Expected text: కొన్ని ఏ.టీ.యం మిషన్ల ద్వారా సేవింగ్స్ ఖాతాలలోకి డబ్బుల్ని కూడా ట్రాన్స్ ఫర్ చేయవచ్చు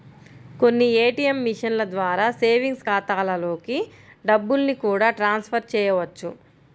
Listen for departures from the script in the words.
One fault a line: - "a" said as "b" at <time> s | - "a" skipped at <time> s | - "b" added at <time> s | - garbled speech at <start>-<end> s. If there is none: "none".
none